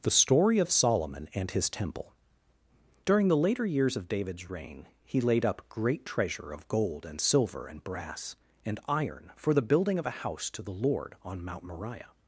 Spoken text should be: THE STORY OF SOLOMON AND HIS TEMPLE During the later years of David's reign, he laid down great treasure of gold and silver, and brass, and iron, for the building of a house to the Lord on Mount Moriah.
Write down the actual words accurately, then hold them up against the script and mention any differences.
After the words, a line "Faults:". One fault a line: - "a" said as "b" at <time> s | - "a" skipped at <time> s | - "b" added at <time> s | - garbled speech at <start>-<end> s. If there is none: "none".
THE STORY OF SOLOMON AND HIS TEMPLE During the later years of David's reign, he laid up great treasure of gold and silver, and brass, and iron, for the building of a house to the Lord on Mount Moriah.
Faults:
- "down" said as "up" at 5.4 s